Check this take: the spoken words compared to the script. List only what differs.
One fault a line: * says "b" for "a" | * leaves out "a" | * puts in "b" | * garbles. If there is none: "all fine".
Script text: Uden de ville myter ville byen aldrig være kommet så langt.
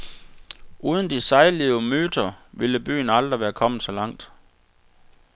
* says "sejlivede" for "ville"